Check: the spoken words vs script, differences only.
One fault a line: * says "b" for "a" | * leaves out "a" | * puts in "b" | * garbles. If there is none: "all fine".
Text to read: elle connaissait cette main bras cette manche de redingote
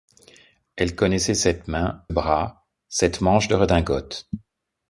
all fine